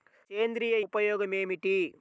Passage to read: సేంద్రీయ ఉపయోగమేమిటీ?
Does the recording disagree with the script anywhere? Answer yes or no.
no